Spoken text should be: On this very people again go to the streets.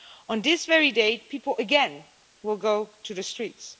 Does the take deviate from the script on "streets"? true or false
false